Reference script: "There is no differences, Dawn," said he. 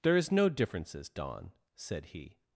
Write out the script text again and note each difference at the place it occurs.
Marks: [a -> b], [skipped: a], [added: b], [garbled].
"There is no differences, Dawn," said he.